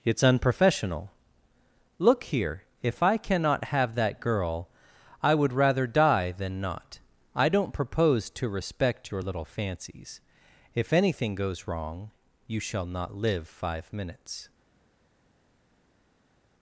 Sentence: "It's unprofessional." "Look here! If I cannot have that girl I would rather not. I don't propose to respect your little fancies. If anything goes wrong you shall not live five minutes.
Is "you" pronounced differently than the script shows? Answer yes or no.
no